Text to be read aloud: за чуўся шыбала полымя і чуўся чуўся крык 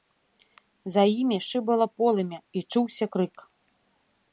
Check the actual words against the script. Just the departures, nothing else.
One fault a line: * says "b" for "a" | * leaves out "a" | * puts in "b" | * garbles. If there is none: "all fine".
* says "імі" for "чуўся"
* leaves out "чуўся"